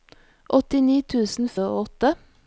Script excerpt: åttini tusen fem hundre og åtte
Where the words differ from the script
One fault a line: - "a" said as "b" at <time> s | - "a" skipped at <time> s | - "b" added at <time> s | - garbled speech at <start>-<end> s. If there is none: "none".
- "fem hundre" skipped at 1.5 s